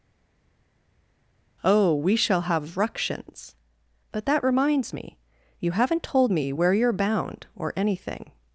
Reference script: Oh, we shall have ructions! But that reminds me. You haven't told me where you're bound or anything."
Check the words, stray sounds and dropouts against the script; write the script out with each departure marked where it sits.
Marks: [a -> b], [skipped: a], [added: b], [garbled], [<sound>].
Oh, we shall have ructions! But that reminds me. You haven't told me where you're bound or anything."